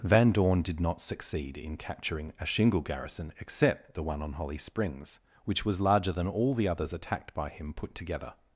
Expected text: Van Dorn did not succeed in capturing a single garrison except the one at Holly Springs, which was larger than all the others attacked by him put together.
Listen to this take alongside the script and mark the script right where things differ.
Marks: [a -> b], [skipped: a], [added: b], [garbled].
Van Dorn did not succeed in capturing a [single -> shingle] garrison except the one [at -> on] Holly Springs, which was larger than all the others attacked by him put together.